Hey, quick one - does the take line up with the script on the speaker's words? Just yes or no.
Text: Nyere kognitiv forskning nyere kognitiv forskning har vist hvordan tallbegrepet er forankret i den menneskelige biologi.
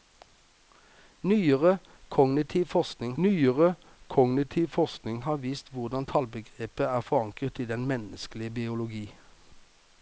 yes